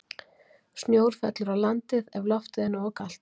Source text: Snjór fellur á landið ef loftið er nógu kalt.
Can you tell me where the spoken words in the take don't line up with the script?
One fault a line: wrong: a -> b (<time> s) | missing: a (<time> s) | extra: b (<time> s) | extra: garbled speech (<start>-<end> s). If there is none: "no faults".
no faults